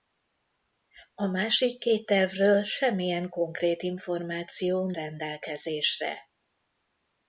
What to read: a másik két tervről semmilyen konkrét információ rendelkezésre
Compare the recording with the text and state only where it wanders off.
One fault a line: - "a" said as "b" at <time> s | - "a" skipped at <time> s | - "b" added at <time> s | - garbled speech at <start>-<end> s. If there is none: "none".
none